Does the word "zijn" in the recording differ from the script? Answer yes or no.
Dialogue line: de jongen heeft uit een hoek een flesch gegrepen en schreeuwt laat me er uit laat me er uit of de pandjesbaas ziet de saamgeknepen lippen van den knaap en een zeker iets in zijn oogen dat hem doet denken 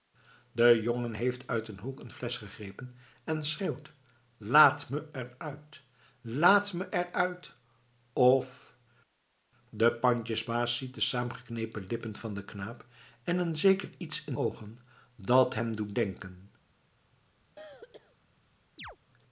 yes